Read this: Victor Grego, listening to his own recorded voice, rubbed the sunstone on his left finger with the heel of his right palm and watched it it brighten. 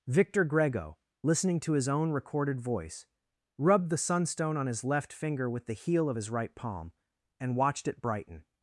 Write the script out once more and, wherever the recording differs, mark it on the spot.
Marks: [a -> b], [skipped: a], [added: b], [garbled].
Victor Grego, listening to his own recorded voice, rubbed the sunstone on his left finger with the heel of his right palm and watched it [skipped: it] brighten.